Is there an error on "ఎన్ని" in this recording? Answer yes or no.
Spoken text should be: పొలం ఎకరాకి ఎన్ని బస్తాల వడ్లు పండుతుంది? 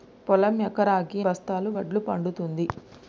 yes